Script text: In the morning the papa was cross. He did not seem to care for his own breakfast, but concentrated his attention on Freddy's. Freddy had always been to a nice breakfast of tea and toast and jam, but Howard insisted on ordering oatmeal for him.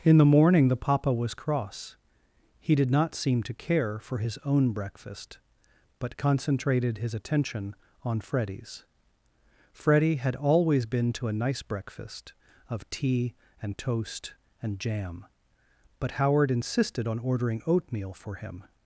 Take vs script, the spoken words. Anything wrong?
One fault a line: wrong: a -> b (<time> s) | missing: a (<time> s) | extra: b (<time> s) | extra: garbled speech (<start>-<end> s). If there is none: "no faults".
no faults